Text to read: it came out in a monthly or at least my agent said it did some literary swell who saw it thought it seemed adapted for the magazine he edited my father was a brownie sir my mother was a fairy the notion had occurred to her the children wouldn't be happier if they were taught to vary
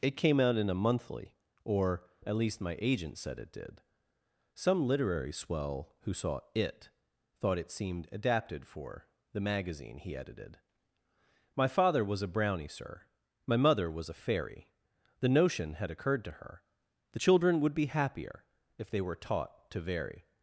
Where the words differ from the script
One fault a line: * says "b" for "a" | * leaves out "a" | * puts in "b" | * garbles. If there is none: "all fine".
* says "would" for "wouldn't"